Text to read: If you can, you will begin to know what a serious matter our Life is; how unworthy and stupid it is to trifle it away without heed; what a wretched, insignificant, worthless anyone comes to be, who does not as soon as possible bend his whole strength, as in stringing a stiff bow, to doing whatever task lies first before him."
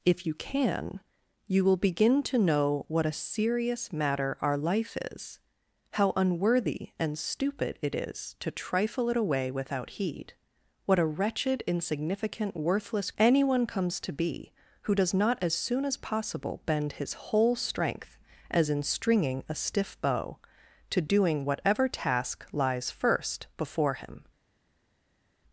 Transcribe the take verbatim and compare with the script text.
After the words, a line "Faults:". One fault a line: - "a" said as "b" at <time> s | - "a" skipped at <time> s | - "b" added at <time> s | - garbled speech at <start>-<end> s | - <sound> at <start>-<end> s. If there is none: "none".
If you can, you will begin to know what a serious matter our Life is; how unworthy and stupid it is to trifle it away without heed; what a wretched, insignificant, worthless anyone comes to be, who does not as soon as possible bend his whole strength, as in stringing a stiff bow, to doing whatever task lies first before him."
Faults:
none